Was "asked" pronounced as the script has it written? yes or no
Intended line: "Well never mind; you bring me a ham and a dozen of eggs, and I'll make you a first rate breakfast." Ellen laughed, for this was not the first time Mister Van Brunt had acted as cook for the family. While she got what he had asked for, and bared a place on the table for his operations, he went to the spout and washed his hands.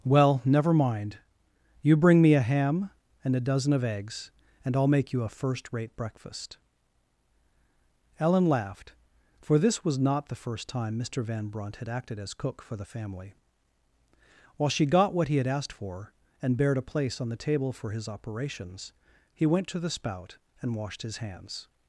yes